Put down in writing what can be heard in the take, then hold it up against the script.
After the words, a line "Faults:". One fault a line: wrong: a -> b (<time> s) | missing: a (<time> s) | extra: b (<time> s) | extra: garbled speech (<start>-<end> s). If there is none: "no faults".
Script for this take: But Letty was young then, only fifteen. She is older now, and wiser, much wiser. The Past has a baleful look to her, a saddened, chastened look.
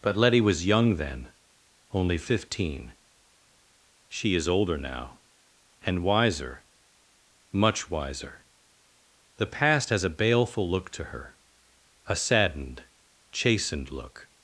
But Letty was young then, only fifteen. She is older now, and wiser, much wiser. The Past has a baleful look to her, a saddened, chastened look.
Faults:
no faults